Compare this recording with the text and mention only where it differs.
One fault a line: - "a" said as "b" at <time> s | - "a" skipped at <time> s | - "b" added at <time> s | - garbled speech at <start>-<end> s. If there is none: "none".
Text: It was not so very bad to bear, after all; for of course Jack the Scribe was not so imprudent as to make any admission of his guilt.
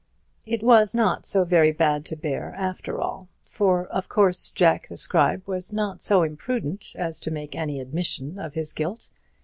none